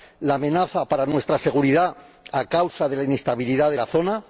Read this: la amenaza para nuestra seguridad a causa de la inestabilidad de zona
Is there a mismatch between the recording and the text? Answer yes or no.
yes